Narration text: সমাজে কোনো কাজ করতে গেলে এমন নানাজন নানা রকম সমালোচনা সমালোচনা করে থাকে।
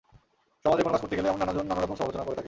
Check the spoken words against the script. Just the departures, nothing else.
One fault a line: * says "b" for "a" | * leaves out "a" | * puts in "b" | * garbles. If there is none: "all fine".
* leaves out "সমালোচনা"